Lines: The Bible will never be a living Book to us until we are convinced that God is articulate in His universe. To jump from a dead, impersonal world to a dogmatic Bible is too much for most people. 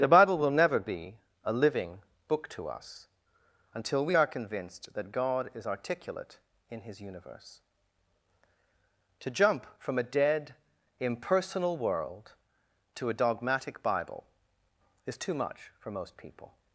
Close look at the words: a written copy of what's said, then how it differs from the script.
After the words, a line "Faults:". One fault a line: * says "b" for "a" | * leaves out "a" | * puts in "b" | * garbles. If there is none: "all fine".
The Bible will never be a living Book to us until we are convinced that God is articulate in His universe. To jump from a dead, impersonal world to a dogmatic Bible is too much for most people.
Faults:
all fine